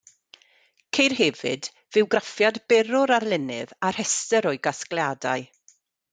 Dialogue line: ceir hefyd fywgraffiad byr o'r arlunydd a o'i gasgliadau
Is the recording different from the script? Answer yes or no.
yes